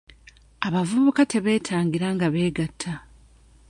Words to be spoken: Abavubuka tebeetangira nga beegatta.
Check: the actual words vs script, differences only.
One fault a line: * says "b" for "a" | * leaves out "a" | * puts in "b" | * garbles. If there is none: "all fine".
all fine